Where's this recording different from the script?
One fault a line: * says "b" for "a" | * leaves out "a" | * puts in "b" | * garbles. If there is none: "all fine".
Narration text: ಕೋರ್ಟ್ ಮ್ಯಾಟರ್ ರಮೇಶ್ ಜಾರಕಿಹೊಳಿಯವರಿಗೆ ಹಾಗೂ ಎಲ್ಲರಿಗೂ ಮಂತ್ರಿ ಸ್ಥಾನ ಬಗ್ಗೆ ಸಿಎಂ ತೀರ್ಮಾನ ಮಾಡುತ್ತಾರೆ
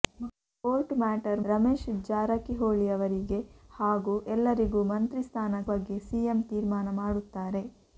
all fine